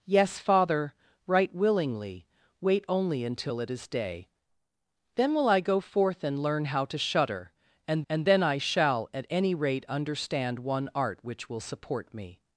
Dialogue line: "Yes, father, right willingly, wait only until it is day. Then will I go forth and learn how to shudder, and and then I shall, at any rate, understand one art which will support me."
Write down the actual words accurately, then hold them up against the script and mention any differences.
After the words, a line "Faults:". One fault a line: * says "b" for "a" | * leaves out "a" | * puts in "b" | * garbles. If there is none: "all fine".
"Yes, father, right willingly, wait only until it is day. Then will I go forth and learn how to shudder, and and then I shall, at any rate, understand one art which will support me."
Faults:
all fine